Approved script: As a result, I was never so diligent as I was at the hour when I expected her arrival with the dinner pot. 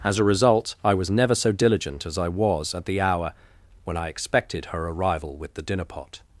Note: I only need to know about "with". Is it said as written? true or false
true